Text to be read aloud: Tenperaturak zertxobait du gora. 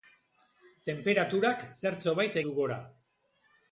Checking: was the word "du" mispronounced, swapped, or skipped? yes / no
no